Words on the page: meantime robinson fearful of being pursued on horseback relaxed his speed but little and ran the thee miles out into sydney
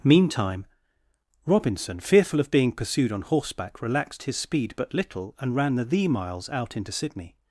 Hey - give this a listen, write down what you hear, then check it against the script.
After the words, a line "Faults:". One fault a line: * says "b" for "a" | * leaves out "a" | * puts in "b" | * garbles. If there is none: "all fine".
meantime robinson fearful of being pursued on horseback relaxed his speed but little and ran the thee miles out into sydney
Faults:
all fine